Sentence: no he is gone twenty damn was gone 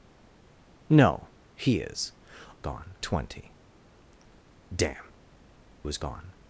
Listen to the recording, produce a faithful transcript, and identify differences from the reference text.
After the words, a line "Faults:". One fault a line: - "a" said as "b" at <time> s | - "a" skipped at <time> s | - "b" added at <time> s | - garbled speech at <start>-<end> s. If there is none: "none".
no he is gone twenty damn was gone
Faults:
none